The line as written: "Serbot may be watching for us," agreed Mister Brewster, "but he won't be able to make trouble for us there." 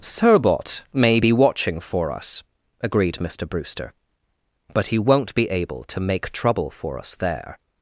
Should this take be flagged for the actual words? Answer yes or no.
no